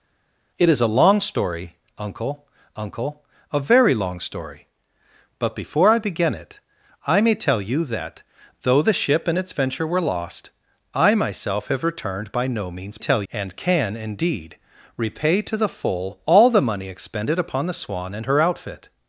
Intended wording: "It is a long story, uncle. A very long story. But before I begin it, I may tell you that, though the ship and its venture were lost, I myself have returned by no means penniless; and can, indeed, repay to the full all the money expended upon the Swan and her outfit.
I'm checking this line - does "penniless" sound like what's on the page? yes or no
no